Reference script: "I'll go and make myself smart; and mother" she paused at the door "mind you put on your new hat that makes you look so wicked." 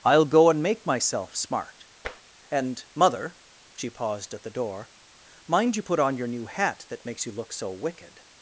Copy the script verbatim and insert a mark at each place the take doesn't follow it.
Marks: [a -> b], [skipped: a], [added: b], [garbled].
"I'll go and make myself smart; and mother" she paused at the door "mind you put on your new hat that makes you look so wicked."